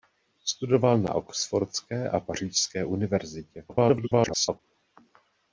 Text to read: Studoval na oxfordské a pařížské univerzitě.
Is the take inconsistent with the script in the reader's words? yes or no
yes